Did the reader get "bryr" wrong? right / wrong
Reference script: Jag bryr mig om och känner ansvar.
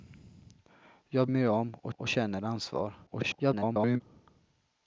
wrong